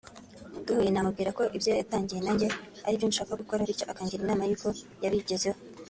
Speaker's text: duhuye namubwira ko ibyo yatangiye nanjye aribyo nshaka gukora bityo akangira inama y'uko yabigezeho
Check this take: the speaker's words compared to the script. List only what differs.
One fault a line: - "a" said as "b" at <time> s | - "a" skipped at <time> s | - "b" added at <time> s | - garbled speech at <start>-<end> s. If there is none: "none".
none